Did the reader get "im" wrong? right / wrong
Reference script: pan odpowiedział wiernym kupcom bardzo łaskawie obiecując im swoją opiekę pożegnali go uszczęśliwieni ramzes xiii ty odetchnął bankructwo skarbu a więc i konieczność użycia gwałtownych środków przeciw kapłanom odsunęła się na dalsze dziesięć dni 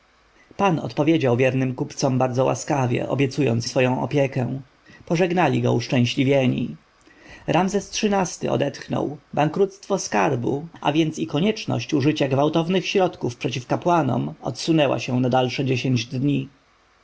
wrong